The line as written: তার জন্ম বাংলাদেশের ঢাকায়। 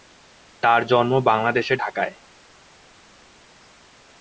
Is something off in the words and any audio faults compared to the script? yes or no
no